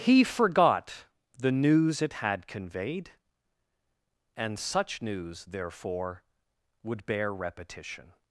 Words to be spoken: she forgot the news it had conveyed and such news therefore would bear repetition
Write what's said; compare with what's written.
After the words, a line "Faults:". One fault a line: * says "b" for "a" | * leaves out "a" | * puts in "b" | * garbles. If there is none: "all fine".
he forgot the news it had conveyed and such news therefore would bear repetition
Faults:
* says "he" for "she"